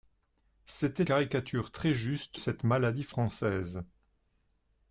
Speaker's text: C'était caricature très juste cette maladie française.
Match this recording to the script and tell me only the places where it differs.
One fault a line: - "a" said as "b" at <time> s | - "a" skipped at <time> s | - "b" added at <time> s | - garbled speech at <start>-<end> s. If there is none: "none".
none